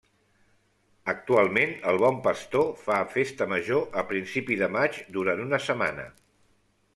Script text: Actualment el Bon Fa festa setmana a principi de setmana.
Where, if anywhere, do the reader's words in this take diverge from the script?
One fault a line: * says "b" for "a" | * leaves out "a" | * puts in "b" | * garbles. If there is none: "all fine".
* puts in "Pastor"
* says "major" for "setmana"
* puts in "maig durant una"